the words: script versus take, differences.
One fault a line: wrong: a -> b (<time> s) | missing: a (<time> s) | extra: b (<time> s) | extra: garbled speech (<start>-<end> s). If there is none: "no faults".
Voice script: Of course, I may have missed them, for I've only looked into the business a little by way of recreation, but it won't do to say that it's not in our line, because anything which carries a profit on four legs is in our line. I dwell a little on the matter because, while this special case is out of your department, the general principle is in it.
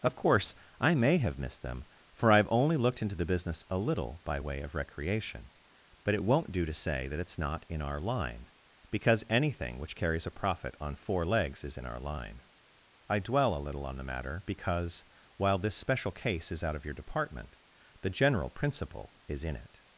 no faults